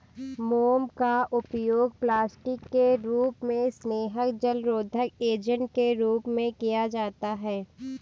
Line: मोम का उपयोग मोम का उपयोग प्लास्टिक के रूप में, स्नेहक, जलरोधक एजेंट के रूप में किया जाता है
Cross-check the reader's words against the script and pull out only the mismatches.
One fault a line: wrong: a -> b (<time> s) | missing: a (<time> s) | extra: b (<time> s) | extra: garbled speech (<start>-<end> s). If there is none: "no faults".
missing: मोम का उपयोग (1.9 s)